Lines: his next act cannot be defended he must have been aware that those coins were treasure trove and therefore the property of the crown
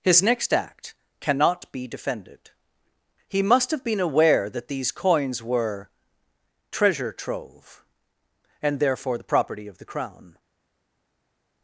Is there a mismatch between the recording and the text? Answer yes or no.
yes